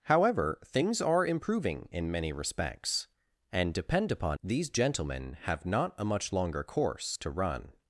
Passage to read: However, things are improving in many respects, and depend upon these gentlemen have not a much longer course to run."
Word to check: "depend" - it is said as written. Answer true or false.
true